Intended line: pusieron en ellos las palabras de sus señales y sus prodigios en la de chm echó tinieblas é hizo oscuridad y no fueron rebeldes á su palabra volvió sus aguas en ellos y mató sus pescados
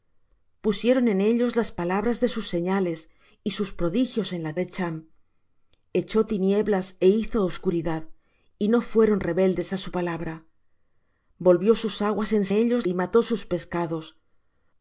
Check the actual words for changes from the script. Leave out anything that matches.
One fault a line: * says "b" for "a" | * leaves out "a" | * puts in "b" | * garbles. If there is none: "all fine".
all fine